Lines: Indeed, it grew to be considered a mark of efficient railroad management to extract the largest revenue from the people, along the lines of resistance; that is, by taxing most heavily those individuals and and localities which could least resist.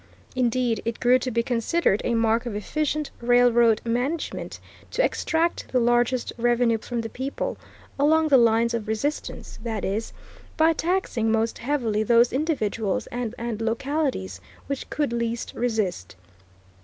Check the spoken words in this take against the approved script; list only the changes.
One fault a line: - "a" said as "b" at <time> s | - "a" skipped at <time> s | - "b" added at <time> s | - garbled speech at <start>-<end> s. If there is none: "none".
none